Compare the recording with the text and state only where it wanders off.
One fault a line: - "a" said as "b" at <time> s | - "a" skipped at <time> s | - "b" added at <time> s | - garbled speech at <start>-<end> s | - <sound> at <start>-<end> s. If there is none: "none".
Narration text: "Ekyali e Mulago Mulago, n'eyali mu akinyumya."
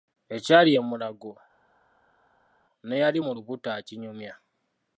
- "Mulago" skipped at 1.3 s
- "lubuto" added at 3.4 s